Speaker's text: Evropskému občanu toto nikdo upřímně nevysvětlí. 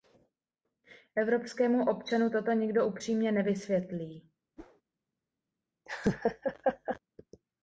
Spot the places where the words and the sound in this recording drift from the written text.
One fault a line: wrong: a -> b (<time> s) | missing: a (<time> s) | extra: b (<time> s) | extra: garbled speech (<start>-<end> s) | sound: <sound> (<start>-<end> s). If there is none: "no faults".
sound: whoosh (4.6-4.8 s)
sound: laugh (5.9-7.0 s)